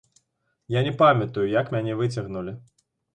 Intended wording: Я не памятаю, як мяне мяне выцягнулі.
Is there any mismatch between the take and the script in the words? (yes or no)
yes